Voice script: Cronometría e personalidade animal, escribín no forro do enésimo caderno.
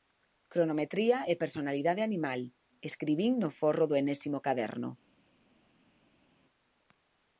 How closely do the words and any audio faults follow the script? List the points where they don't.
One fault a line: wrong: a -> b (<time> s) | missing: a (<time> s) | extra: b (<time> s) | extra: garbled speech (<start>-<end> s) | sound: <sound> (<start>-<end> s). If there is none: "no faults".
no faults